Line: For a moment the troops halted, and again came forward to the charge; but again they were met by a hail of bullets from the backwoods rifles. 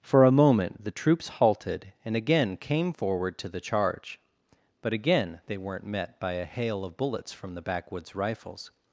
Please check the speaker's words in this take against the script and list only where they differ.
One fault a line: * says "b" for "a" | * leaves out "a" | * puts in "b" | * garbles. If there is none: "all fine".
* says "weren't" for "were"